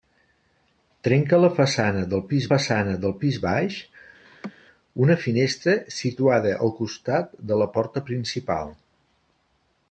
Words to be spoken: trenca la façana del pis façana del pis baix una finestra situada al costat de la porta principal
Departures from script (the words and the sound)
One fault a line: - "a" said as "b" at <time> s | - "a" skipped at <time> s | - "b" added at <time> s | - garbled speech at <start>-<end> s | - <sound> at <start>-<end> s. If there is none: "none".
- laugh at 4.2-4.5 s